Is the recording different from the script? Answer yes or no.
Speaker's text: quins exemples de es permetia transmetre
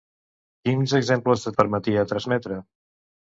no